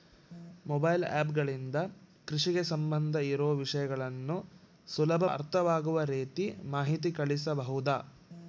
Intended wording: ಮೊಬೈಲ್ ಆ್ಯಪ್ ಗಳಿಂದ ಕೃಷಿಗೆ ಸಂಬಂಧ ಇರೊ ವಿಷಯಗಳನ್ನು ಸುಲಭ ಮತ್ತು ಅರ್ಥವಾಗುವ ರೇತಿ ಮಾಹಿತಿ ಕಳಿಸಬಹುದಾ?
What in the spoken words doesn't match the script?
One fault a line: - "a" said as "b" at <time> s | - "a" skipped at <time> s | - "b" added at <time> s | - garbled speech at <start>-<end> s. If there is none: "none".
- "ಮತ್ತು" skipped at 5.2 s